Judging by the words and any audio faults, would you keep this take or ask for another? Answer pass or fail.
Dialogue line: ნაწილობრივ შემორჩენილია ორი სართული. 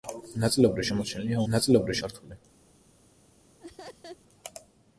fail